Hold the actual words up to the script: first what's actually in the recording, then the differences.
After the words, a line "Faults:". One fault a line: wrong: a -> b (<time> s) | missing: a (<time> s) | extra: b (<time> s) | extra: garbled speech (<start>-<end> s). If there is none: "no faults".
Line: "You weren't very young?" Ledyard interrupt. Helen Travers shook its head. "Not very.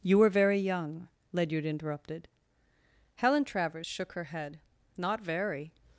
"You were very young?" Ledyard interrupted. Helen Travers shook her head. "Not very.
Faults:
wrong: weren't -> were (0.2 s)
wrong: interrupt -> interrupted (1.6 s)
wrong: its -> her (4.1 s)